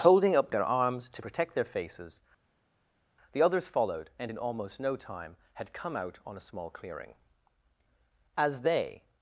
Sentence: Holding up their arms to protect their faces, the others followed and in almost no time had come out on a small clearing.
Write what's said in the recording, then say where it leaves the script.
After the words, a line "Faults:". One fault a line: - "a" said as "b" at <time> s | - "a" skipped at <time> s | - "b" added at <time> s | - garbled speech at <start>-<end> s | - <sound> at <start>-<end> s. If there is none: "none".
Holding up their arms to protect their faces, the others followed and in almost no time had come out on a small clearing. As they
Faults:
- "As they" added at 8.4 s